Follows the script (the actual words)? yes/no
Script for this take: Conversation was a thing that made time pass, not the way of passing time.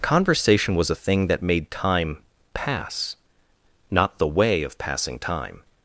yes